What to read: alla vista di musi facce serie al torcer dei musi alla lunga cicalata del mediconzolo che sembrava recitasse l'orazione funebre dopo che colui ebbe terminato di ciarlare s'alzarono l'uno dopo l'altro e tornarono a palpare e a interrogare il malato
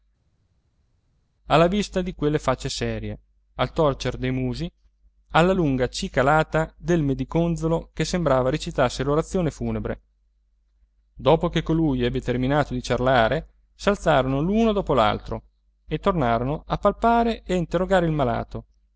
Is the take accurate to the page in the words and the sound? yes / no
no